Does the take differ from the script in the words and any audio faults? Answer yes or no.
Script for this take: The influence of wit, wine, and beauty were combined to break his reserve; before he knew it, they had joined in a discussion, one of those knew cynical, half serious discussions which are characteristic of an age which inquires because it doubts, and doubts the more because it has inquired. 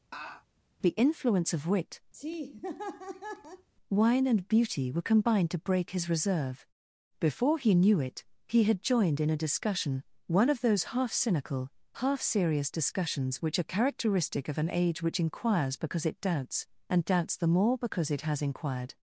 yes